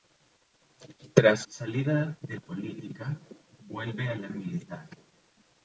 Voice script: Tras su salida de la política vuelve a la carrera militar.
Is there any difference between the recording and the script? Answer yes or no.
yes